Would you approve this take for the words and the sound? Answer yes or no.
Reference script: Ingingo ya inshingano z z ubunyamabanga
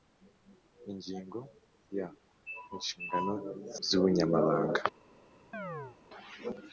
no